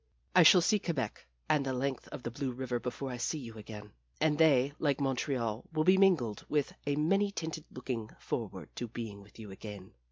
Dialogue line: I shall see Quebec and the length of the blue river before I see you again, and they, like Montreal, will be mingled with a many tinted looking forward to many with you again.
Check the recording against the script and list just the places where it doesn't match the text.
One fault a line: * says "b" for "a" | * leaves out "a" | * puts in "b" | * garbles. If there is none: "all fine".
* says "being" for "many"